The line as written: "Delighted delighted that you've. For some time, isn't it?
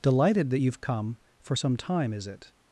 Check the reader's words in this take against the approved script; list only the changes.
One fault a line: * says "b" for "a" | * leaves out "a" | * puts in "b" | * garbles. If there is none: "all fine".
* leaves out "delighted"
* puts in "come"
* says "is" for "isn't"